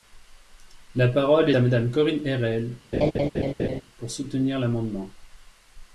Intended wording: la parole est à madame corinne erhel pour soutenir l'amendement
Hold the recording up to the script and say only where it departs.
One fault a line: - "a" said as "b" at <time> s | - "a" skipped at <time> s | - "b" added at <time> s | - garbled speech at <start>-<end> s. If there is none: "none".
- "est" skipped at 1.5 s